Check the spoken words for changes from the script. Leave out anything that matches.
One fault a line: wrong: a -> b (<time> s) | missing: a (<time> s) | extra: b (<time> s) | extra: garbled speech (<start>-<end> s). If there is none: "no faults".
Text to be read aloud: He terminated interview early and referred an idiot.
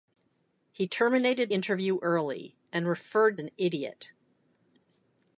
no faults